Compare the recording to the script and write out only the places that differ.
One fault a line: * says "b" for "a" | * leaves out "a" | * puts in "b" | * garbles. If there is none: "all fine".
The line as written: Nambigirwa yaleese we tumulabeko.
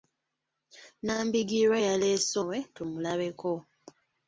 all fine